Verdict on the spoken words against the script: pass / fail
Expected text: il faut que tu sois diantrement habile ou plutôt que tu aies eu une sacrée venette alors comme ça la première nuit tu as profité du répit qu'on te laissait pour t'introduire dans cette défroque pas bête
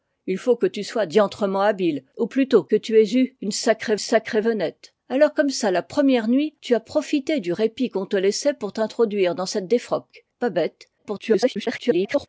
fail